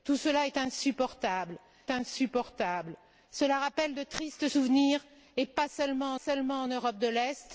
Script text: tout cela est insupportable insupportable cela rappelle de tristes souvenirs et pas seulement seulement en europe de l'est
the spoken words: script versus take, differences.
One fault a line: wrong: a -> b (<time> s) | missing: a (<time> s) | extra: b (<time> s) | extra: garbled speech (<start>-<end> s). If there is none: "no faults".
no faults